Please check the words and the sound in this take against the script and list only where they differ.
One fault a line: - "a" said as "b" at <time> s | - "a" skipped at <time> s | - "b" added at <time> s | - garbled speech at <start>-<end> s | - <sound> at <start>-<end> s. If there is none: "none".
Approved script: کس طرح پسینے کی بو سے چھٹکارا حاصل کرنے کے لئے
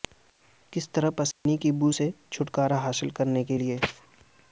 - dropout at 1.3-1.5 s